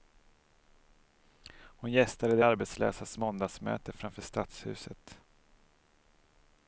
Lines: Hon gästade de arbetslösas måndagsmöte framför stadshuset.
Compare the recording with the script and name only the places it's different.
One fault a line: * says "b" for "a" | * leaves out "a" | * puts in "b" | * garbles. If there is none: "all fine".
all fine